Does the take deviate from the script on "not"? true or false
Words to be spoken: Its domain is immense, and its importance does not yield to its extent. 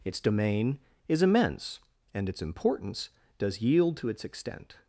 true